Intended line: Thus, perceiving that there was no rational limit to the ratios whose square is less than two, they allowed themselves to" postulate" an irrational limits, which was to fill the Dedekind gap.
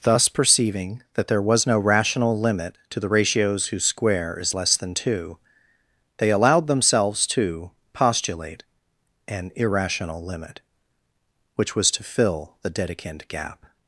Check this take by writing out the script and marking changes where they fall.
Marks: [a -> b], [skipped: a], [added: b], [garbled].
Thus, perceiving that there was no rational limit to the ratios whose square is less than two, they allowed themselves to" postulate" an irrational [limits, -> limit] which was to fill the Dedekind gap.